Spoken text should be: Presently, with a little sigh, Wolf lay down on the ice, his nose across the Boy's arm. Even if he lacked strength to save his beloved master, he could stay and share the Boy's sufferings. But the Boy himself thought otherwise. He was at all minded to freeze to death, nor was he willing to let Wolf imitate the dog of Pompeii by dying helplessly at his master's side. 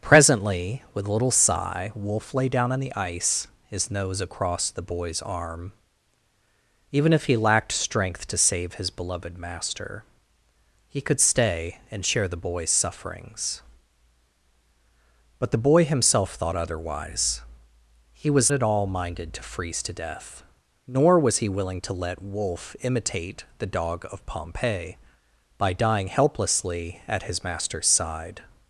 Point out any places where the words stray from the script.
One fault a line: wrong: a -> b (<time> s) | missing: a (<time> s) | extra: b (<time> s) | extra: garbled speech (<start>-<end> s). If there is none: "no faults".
no faults